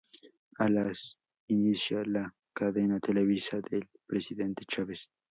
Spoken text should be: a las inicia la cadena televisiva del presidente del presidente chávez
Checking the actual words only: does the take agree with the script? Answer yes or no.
no